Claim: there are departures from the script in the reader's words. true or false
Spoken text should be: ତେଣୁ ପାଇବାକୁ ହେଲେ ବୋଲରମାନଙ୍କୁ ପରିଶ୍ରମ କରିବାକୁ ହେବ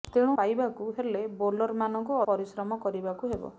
false